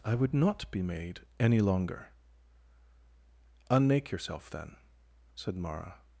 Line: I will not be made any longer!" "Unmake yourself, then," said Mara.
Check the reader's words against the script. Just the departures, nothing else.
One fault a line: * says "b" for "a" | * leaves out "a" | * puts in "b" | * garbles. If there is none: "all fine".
* says "would" for "will"